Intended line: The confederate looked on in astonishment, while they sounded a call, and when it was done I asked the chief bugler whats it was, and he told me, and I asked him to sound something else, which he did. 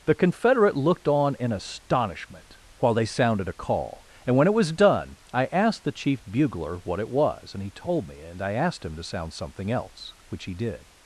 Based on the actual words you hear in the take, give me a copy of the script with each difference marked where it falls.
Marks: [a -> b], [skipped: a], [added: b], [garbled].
The confederate looked on in astonishment, while they sounded a call, and when it was done I asked the chief bugler [whats -> what] it was, and he told me, and I asked him to sound something else, which he did.